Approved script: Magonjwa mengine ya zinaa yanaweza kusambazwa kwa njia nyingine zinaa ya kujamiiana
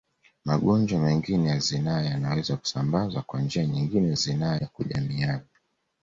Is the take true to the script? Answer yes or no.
yes